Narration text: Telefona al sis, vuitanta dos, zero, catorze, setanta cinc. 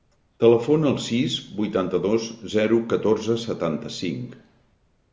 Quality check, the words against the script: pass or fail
pass